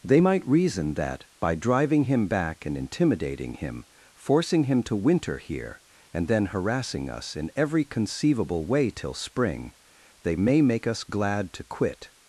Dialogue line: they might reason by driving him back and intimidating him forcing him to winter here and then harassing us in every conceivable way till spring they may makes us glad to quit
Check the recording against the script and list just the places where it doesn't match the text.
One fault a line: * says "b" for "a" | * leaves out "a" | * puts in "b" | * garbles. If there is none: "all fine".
* puts in "that"
* says "make" for "makes"